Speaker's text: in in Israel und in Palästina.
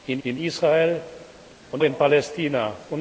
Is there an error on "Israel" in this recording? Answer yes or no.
no